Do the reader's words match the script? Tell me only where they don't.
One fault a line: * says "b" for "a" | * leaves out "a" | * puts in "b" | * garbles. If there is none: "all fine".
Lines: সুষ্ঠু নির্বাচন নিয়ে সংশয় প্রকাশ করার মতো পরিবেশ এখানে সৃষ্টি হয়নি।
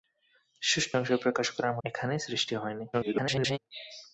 * leaves out "নির্বাচন নিয়ে"
* leaves out "মতো পরিবেশ"
* garbles